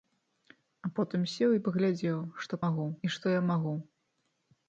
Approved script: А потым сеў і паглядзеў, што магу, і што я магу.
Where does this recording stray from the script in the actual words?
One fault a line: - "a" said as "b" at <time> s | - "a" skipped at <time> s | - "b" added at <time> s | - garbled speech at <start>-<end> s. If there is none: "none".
none